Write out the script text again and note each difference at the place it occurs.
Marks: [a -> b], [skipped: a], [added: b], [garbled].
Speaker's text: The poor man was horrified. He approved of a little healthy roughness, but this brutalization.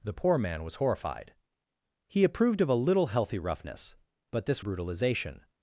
The poor man was horrified. He approved of a little healthy roughness, but this brutalization.